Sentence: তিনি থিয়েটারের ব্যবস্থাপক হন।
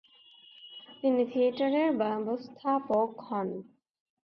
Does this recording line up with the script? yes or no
yes